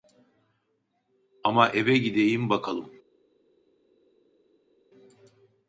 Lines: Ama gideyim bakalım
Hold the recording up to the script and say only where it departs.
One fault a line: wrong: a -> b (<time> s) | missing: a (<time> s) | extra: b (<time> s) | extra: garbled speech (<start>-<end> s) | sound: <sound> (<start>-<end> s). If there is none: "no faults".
extra: eve (1.7 s)